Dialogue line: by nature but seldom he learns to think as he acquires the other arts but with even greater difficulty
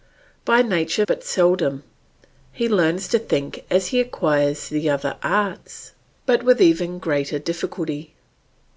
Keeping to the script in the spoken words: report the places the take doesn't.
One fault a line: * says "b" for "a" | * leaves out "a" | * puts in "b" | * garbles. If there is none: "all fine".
all fine